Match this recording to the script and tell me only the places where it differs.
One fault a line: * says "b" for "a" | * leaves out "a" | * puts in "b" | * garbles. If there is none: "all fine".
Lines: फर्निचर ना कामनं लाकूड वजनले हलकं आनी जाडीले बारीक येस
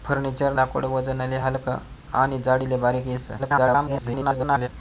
* leaves out "ना कामनं"
* garbles